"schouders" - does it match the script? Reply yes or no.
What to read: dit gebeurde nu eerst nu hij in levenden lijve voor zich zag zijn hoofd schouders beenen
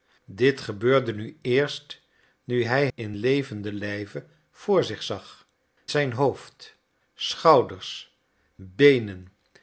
yes